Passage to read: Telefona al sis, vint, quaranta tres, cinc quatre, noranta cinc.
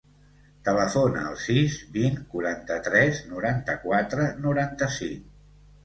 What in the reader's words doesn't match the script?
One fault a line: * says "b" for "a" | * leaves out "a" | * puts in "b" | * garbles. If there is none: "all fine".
* says "noranta" for "cinc"